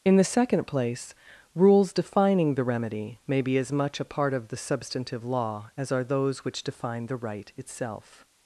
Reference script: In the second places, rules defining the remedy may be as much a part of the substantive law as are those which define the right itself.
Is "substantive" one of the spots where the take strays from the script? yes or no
no